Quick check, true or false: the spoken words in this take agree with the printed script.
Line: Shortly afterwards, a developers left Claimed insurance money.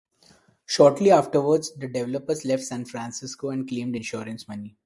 false